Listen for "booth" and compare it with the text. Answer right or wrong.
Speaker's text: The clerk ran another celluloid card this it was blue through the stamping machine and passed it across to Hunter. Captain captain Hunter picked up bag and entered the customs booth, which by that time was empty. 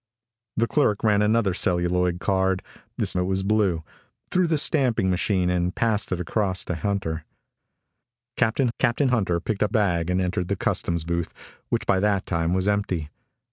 right